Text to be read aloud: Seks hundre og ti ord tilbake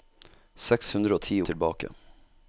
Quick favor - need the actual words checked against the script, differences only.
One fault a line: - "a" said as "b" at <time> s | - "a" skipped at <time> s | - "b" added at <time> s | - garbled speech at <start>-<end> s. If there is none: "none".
- "ord" skipped at 1.4 s